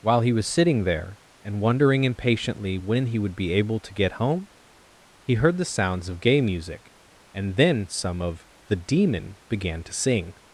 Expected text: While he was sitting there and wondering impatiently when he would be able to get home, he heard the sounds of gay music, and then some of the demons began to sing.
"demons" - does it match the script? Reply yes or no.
no